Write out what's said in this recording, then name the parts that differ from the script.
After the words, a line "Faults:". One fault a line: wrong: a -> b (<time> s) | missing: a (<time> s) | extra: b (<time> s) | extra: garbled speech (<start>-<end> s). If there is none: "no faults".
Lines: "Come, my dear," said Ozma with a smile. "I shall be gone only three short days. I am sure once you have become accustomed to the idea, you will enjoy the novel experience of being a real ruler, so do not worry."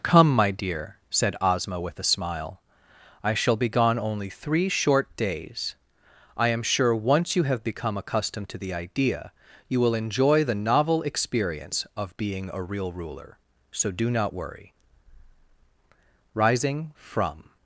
"Come, my dear," said Ozma with a smile. "I shall be gone only three short days. I am sure once you have become accustomed to the idea, you will enjoy the novel experience of being a real ruler, so do not worry." Rising from
Faults:
extra: Rising from (16.3 s)